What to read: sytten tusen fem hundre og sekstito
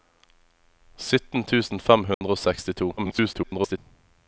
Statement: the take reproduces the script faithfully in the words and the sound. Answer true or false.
false